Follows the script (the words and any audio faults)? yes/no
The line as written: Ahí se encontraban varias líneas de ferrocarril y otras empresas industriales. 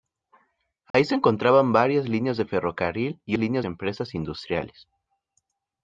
no